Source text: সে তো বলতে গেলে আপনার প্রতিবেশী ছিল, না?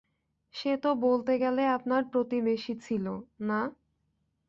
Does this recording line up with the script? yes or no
yes